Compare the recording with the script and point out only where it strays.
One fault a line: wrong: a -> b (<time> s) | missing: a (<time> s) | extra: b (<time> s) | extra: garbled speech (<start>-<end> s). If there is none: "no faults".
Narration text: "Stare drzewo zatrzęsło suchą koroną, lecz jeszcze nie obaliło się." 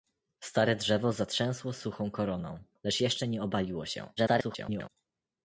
extra: garbled speech (4.2-4.9 s)